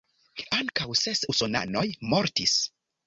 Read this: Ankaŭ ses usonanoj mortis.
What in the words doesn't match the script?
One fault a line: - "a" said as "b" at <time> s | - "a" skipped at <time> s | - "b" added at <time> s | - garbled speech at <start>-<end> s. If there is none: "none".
none